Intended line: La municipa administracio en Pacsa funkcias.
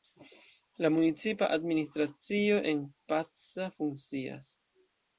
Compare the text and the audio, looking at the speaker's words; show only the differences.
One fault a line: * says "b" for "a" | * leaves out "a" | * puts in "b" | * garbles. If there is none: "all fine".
all fine